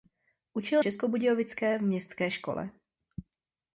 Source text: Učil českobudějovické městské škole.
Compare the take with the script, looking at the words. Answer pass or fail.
pass